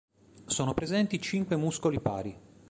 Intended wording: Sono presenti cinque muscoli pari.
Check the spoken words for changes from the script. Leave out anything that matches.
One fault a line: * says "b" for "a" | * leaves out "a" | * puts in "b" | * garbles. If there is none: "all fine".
all fine